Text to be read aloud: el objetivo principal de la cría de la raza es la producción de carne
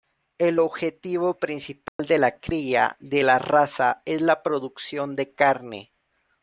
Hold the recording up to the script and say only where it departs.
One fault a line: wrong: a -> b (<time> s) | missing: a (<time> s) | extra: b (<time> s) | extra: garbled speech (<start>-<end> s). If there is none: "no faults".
no faults